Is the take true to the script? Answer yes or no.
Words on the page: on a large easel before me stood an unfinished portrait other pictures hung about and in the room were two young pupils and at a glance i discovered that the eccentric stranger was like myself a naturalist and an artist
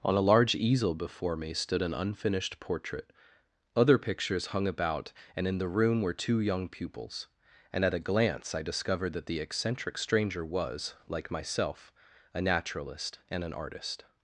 yes